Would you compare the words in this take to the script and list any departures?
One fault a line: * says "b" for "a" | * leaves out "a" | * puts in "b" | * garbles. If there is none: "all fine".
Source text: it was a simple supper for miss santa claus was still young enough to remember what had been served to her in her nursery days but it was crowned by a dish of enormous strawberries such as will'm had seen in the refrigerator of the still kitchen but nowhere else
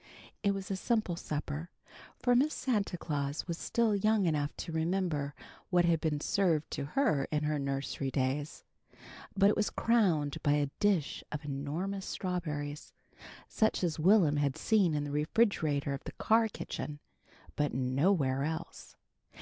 * says "car" for "still"